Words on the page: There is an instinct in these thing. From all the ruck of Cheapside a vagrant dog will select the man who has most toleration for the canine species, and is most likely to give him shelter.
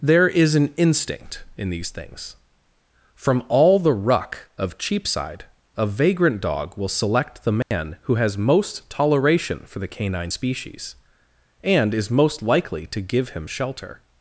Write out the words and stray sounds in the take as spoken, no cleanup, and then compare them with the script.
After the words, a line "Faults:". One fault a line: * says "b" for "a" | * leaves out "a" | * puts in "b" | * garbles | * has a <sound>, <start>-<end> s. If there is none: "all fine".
There is an instinct in these things. From all the ruck of Cheapside a vagrant dog will select the man who has most toleration for the canine species, and is most likely to give him shelter.
Faults:
* says "things" for "thing"
* has a dropout, 7.6-7.7 s